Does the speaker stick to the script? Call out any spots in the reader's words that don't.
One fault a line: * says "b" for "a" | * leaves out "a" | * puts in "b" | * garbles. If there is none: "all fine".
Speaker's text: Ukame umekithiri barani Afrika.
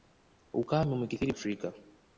* leaves out "barani"